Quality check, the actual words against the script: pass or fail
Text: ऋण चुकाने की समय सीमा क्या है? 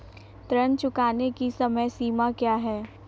pass